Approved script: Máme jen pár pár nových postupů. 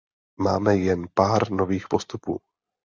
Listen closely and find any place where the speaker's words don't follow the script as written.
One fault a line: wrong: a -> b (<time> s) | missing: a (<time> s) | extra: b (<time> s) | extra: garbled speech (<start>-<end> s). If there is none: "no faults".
missing: pár (1.5 s)